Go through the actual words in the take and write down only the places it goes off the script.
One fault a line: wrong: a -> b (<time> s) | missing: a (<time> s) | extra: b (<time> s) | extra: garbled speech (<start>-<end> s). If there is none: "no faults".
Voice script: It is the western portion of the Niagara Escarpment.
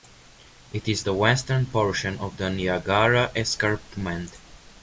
no faults